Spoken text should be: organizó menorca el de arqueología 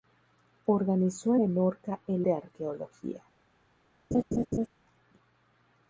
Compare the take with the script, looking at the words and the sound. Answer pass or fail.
fail